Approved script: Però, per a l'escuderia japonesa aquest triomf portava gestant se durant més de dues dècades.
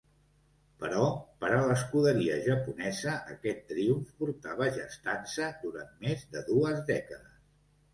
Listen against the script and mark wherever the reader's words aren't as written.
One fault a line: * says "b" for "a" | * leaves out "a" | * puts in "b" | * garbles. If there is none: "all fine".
all fine